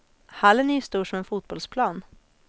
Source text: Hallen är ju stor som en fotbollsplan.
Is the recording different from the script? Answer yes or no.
no